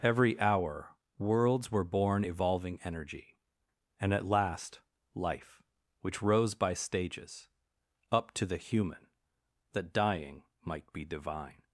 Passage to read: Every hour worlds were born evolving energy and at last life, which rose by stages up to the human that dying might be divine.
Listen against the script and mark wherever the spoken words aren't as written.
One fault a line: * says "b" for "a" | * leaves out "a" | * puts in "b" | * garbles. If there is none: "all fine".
all fine